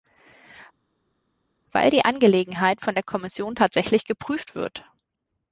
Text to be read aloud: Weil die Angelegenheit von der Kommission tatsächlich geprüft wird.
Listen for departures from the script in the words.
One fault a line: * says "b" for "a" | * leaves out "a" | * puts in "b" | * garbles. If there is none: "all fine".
all fine